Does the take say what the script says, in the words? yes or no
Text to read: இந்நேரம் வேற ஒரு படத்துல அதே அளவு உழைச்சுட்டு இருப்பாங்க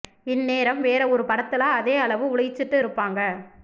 yes